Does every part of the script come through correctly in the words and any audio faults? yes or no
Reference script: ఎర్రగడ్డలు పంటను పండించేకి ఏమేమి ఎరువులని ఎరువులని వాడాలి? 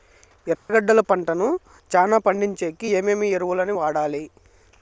no